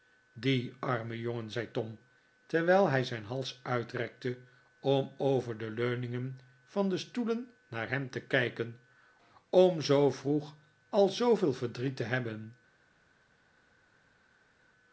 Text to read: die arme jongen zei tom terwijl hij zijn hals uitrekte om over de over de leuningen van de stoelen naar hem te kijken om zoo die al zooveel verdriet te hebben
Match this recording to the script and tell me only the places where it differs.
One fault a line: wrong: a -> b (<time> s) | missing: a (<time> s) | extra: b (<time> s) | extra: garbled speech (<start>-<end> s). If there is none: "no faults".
missing: over de (5.7 s)
wrong: die -> vroeg (10.1 s)